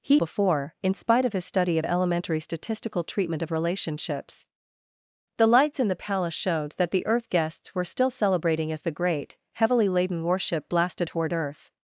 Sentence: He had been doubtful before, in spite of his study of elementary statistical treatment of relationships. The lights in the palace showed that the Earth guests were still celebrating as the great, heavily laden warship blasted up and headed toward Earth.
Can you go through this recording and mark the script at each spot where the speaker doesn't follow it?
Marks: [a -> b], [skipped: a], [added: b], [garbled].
He [skipped: had been doubtful] before, in spite of his study of elementary statistical treatment of relationships. The lights in the palace showed that the Earth guests were still celebrating as the great, heavily laden warship blasted [skipped: up and headed] toward Earth.